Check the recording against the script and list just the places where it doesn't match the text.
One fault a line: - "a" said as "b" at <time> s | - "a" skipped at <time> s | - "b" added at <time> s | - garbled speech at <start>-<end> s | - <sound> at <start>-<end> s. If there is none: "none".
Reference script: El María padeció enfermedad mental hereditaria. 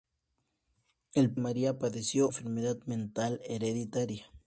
none